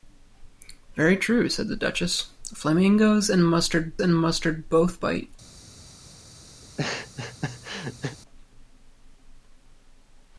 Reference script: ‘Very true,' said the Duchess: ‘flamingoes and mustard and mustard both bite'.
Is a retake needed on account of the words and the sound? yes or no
yes